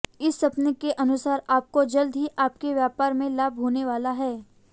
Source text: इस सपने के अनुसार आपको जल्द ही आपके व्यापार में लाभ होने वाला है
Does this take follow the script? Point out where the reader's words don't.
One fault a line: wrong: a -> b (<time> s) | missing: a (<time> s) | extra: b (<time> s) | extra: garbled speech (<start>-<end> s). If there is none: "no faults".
no faults